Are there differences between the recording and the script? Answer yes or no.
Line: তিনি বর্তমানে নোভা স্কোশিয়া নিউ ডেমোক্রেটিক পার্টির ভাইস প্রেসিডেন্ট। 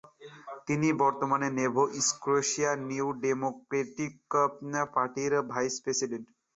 no